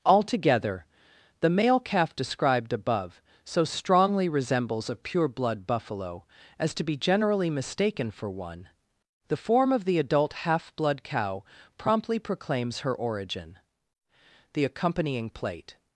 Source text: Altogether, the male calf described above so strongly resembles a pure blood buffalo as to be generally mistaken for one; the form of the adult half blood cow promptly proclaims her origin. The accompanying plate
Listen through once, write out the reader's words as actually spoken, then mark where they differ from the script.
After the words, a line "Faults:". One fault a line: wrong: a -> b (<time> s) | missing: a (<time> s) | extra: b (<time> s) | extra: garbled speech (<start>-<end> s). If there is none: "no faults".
Altogether, the male calf described above so strongly resembles a pure blood buffalo as to be generally mistaken for one; the form of the adult half blood cow promptly proclaims her origin. The accompanying plate
Faults:
no faults